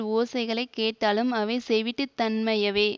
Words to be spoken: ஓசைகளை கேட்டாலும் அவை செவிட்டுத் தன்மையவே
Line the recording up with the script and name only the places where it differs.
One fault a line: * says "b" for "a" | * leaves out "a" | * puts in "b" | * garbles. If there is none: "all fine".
all fine